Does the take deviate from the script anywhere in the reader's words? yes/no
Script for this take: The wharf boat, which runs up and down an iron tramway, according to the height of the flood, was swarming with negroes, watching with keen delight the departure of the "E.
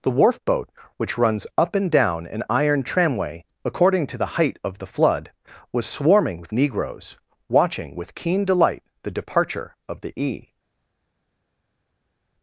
no